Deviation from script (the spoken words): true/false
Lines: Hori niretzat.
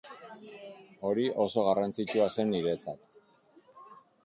true